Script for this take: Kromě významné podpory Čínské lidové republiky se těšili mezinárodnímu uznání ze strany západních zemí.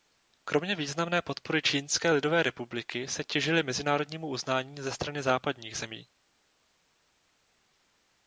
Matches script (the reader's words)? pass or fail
pass